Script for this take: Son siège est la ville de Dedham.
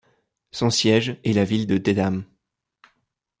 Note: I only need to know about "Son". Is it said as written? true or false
true